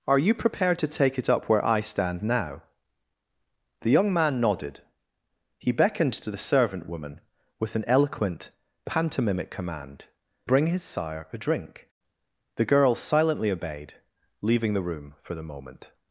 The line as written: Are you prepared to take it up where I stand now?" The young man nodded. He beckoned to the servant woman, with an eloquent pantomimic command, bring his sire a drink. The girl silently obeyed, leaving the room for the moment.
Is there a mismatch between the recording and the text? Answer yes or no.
no